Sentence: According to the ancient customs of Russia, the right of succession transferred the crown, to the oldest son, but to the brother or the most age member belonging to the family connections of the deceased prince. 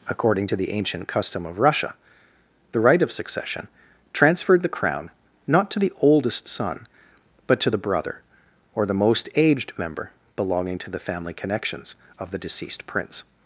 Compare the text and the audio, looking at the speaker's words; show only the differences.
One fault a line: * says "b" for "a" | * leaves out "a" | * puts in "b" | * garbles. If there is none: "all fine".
* says "custom" for "customs"
* puts in "not"
* says "aged" for "age"